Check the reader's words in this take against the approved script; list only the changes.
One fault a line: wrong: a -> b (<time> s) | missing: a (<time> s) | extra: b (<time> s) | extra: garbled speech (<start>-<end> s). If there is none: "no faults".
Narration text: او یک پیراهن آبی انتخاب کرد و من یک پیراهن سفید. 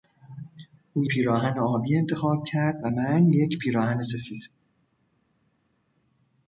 missing: یک (1.1 s)